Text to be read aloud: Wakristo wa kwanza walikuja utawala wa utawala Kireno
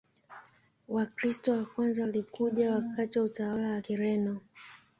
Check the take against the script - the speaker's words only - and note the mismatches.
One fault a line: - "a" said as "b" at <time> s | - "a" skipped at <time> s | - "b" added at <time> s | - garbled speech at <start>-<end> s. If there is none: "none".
- "utawala" said as "wakati" at 2.7 s
- "wa" added at 3.7 s